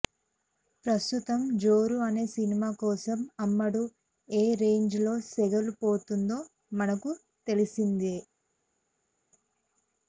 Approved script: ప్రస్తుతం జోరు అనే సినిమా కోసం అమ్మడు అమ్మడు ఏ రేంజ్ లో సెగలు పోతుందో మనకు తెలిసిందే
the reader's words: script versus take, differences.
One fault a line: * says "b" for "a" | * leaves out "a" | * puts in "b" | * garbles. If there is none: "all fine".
* leaves out "అమ్మడు"